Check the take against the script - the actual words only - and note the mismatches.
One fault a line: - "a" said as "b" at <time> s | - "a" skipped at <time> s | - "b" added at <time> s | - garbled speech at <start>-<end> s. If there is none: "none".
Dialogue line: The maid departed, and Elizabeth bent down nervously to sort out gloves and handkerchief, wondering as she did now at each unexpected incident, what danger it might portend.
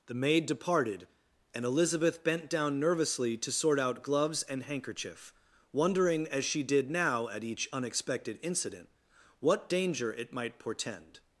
none